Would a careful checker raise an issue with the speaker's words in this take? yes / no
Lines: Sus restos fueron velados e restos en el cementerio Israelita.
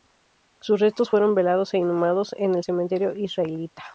yes